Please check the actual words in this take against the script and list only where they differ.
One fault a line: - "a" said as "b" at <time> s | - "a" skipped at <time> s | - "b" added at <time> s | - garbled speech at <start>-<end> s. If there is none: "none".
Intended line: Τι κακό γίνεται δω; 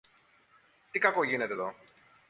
none